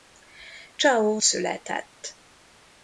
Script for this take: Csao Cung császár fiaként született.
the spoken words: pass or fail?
fail